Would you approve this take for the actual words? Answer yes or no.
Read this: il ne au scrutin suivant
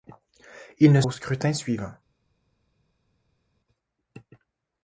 yes